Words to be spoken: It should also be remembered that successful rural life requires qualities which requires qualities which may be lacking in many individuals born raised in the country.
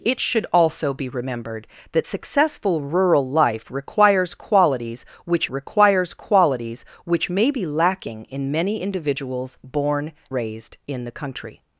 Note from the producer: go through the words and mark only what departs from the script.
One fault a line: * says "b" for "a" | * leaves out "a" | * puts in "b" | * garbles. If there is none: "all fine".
all fine